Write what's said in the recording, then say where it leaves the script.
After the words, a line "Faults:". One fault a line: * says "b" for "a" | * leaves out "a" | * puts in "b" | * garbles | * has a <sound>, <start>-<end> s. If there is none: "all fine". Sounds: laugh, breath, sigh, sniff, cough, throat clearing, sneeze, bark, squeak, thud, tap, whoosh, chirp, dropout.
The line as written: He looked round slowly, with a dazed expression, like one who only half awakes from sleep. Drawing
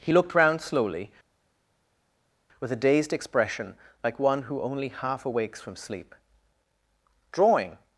He looked round slowly, with a dazed expression, like one who only half awakes from sleep. Drawing
Faults:
all fine